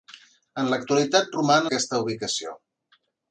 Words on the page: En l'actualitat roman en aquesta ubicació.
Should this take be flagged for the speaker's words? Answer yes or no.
yes